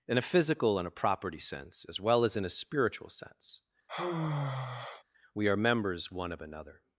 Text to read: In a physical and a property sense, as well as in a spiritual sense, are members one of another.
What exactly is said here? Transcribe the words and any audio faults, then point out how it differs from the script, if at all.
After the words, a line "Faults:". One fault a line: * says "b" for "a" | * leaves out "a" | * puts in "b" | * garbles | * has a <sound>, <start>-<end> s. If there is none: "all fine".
In a physical and a property sense, as well as in a spiritual sense, we are members one of another.
Faults:
* has a sigh, 3.9-5.0 s
* puts in "we"